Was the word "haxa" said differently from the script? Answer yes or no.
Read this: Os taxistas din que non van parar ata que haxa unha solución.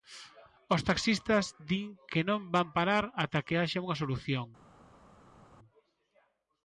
no